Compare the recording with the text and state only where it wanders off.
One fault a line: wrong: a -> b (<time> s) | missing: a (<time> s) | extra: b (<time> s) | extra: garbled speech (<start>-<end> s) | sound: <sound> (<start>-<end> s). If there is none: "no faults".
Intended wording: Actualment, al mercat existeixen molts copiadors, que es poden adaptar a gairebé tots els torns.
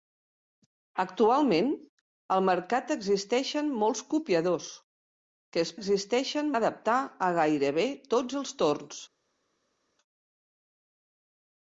wrong: poden -> existeixen (5.8 s)